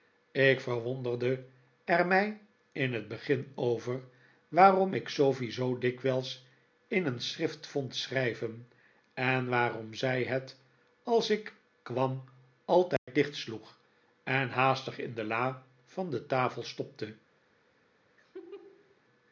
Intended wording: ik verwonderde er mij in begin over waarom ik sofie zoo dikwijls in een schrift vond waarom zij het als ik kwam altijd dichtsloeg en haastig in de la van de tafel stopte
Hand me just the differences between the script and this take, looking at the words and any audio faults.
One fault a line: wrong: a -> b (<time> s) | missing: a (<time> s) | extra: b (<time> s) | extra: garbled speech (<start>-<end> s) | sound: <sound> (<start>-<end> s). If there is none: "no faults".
extra: het (2.9 s)
extra: schrijven en (8.0 s)
sound: dropout (13.0-13.1 s)
sound: laugh (18.2-19.0 s)